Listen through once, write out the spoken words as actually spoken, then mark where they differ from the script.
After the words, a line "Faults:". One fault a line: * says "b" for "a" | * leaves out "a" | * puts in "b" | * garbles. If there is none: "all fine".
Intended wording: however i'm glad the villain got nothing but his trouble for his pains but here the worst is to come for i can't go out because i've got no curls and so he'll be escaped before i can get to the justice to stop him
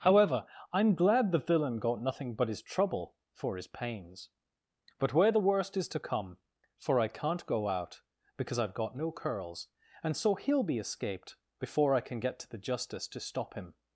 however i'm glad the villain got nothing but his trouble for his pains but where the worst is to come for i can't go out because i've got no curls and so he'll be escaped before i can get to the justice to stop him
Faults:
* says "where" for "here"